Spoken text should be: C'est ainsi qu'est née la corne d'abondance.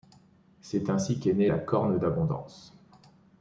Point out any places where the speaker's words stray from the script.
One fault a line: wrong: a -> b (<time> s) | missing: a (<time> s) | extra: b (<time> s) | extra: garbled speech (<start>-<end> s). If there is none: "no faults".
no faults